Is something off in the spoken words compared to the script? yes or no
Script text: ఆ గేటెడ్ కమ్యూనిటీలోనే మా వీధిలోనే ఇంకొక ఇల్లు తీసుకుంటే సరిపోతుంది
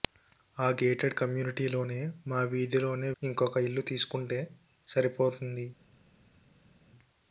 no